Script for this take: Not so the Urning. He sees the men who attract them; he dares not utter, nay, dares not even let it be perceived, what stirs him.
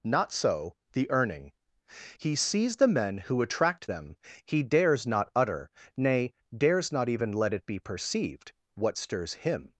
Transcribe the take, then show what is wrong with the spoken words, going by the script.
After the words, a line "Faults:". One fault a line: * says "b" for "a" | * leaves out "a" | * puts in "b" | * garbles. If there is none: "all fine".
Not so the Urning. He sees the men who attract them; he dares not utter, nay, dares not even let it be perceived, what stirs him.
Faults:
all fine